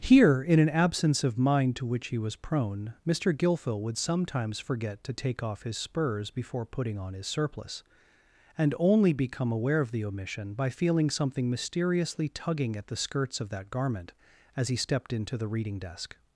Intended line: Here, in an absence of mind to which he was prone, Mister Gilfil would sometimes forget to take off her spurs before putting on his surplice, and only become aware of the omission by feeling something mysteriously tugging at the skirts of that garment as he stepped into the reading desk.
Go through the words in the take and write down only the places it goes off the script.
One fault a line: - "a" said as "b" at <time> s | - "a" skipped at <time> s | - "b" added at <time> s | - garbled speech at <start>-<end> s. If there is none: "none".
- "her" said as "his" at 5.6 s